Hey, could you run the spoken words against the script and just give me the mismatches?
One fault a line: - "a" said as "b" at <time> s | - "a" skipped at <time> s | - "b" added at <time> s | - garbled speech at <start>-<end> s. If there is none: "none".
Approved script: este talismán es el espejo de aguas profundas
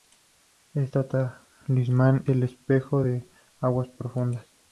- "es" skipped at 2.2 s